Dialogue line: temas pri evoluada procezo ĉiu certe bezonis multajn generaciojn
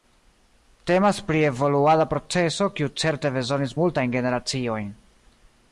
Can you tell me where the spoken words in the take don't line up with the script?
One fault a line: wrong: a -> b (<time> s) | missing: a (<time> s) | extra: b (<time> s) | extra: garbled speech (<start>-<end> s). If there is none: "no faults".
wrong: ĉiu -> kiu (2.8 s)